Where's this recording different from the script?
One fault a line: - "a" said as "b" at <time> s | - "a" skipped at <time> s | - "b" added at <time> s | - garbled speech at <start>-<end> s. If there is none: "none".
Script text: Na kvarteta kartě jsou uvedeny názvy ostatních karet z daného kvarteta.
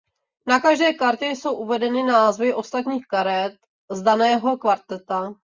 - "kvarteta" said as "každé" at 0.6 s